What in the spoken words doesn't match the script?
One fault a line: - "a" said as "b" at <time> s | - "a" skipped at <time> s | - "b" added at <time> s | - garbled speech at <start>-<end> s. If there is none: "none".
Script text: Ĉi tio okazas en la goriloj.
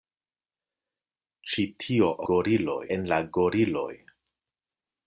- "okazas" said as "goriloj" at 2.3 s